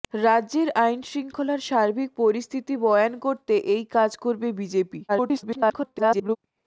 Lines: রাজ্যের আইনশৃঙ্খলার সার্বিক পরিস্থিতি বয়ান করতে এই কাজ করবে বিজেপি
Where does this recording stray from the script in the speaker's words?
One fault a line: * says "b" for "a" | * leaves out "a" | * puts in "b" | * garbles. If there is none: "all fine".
* garbles